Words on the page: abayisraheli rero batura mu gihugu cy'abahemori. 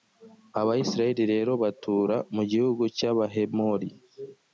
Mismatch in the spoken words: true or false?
false